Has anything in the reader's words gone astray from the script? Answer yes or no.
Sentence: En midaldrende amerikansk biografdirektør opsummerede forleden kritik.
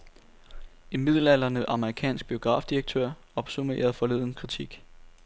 no